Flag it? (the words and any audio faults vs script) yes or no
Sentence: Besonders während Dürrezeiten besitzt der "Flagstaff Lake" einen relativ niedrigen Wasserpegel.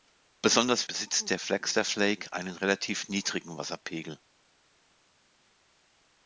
yes